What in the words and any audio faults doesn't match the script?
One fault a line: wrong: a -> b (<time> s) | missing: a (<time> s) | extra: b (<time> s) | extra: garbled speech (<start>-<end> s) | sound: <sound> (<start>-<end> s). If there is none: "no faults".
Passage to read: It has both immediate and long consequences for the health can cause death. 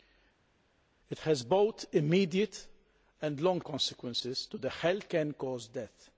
no faults